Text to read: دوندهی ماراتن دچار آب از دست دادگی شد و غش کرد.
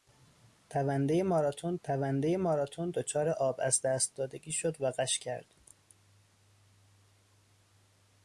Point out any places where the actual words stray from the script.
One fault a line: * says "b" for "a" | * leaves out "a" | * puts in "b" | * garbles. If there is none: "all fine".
* puts in "دوندهی ماراتن"